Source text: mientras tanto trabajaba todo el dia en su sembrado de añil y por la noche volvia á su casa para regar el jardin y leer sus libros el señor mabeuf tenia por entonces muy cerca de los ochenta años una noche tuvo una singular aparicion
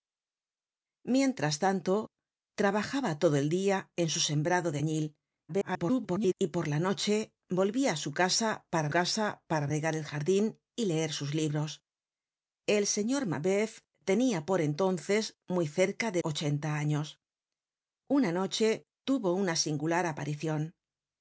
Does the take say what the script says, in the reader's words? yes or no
no